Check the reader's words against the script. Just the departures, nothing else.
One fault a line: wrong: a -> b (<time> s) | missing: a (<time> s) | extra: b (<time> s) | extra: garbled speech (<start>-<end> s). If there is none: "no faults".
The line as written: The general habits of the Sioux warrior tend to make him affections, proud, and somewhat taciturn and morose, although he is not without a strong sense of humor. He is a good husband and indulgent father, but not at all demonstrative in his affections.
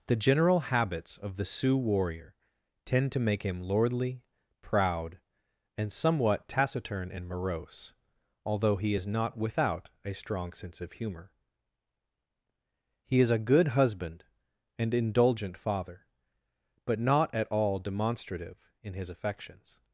wrong: affections -> lordly (3.6 s)